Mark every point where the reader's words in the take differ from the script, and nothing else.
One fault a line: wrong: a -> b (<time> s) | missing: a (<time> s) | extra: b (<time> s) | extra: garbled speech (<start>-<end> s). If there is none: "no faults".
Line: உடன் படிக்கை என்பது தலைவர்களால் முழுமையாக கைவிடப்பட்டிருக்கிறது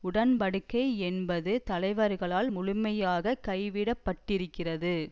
no faults